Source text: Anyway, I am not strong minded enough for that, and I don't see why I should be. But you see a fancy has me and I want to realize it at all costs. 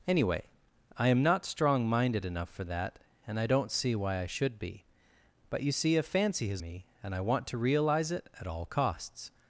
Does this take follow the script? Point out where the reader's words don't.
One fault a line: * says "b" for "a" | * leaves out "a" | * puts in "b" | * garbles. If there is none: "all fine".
all fine